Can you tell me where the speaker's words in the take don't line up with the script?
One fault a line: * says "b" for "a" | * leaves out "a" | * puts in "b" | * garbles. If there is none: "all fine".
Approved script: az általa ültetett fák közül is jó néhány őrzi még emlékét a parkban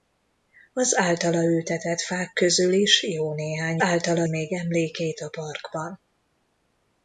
* says "általa" for "őrzi"